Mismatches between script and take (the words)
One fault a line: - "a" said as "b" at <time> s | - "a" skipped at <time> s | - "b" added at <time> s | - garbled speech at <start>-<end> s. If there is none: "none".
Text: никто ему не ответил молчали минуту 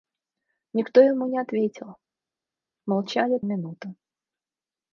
none